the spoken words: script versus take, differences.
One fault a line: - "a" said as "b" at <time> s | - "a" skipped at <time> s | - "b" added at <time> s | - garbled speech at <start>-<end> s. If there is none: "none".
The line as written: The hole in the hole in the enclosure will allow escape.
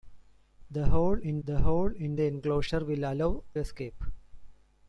none